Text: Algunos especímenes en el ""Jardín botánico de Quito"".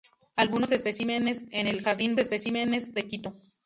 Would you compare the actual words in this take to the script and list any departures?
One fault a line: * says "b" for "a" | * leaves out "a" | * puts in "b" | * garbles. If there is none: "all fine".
* says "especímenes" for "botánico"